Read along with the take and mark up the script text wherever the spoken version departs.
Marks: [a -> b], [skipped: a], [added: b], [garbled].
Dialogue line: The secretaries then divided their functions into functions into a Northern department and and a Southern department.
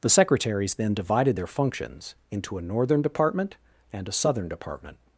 The secretaries then divided their functions into [skipped: functions into] a Northern department and [skipped: and] a Southern department.